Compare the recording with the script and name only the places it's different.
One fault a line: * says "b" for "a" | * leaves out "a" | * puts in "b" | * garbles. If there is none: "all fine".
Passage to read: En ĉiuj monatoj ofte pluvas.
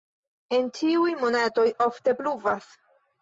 all fine